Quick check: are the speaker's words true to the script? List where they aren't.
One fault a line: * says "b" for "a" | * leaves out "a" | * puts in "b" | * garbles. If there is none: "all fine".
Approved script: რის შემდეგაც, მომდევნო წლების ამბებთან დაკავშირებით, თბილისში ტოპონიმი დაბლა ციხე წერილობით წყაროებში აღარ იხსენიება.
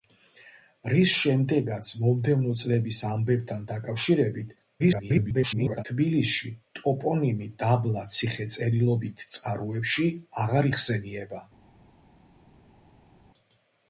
* garbles